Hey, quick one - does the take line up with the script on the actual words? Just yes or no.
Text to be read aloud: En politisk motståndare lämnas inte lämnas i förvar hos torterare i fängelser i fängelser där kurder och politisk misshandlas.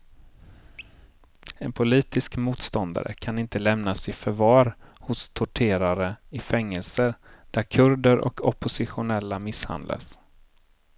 no